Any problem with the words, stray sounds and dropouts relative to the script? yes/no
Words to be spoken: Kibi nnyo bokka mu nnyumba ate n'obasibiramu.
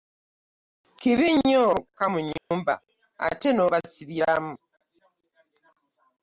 yes